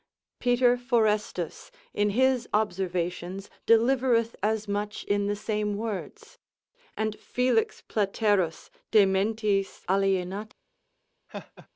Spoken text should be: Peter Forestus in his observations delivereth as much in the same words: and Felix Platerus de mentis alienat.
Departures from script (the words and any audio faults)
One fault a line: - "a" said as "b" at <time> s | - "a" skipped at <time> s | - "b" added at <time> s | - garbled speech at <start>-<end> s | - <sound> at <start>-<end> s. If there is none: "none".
- laugh at 11.3-11.7 s